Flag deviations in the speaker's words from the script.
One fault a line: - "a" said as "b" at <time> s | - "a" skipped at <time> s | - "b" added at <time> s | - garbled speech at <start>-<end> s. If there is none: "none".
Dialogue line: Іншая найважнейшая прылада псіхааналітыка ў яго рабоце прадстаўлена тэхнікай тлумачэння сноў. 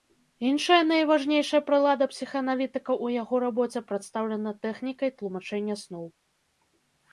none